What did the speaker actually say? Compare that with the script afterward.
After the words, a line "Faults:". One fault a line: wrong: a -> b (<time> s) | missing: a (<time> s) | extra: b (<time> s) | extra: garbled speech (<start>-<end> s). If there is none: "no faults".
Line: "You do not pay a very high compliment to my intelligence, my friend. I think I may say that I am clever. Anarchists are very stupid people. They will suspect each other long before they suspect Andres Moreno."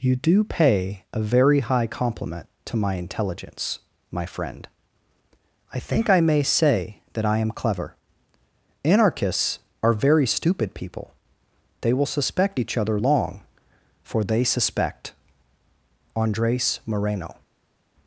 "You do pay a very high compliment to my intelligence, my friend. I think I may say that I am clever. Anarchists are very stupid people. They will suspect each other long for they suspect Andres Moreno."
Faults:
missing: not (0.4 s)
wrong: before -> for (14.0 s)